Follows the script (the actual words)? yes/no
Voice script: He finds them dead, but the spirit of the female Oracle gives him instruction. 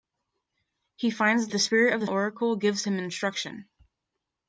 no